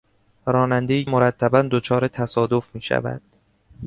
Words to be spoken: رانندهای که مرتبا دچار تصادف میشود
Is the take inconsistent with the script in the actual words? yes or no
yes